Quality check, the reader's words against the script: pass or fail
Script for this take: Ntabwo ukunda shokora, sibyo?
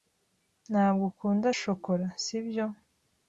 pass